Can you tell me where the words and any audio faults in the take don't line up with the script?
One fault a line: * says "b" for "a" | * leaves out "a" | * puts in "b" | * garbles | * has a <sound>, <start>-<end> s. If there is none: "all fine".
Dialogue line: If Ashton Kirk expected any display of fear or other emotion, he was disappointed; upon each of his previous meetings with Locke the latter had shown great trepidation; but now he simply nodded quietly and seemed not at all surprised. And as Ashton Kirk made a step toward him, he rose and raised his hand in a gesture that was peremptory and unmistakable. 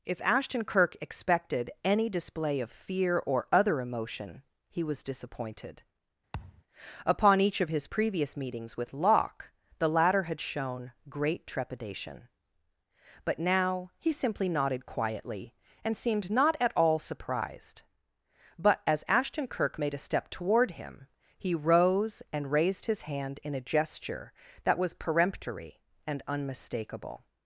* has a thud, 6.3-6.6 s
* says "But" for "And"